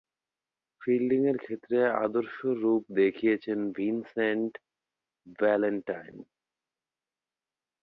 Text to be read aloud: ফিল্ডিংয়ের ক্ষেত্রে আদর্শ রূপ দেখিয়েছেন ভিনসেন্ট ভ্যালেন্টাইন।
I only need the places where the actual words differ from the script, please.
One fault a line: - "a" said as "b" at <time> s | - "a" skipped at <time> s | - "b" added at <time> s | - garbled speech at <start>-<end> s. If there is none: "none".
none